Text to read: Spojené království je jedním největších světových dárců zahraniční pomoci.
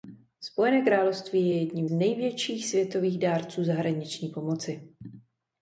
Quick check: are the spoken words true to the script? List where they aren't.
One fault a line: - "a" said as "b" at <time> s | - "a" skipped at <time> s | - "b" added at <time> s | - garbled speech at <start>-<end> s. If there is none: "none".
none